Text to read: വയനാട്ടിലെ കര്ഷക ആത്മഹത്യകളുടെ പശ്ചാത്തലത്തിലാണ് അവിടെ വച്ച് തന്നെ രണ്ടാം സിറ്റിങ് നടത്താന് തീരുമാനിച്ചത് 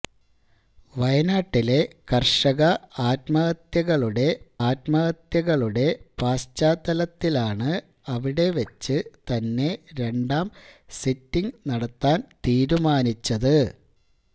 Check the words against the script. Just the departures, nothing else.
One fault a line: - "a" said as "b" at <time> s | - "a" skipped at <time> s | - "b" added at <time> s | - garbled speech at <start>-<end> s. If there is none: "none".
- "ആത്മഹത്യകളുടെ" added at 4.7 s